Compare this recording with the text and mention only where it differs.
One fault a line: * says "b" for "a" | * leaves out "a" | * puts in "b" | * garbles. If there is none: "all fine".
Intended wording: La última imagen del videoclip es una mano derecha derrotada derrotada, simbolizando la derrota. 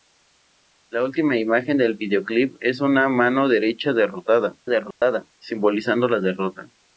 all fine